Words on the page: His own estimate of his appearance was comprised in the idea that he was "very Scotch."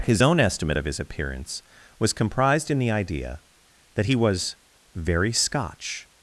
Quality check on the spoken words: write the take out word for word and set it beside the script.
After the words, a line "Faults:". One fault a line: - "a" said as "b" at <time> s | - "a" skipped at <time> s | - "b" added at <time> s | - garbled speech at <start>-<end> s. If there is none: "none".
His own estimate of his appearance was comprised in the idea that he was "very Scotch."
Faults:
none